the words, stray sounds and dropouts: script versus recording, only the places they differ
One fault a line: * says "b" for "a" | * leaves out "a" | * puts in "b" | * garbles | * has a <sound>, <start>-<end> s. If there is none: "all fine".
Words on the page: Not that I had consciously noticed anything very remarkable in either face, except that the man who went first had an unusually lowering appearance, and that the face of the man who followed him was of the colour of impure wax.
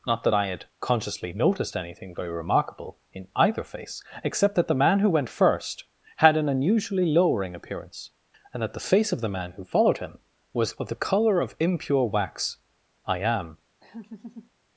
* puts in "I am"
* has a laugh, 13.8-14.5 s